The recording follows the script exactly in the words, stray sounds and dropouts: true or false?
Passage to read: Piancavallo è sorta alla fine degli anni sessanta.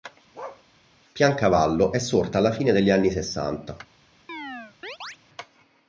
false